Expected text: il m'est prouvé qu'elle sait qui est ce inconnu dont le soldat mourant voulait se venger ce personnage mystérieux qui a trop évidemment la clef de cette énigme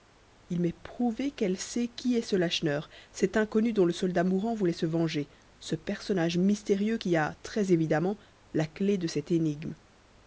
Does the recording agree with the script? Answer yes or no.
no